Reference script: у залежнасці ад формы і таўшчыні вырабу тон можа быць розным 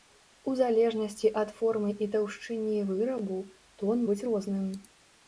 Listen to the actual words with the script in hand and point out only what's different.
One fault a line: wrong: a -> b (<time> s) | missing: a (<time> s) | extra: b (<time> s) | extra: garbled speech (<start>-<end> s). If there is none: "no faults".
missing: можа (4.0 s)